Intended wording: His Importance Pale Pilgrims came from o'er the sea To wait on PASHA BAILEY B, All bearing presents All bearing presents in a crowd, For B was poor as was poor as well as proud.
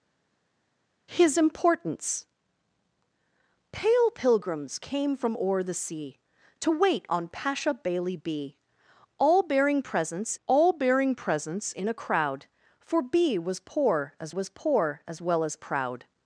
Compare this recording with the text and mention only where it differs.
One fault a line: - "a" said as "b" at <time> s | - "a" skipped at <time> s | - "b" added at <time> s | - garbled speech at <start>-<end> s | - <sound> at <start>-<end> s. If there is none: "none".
none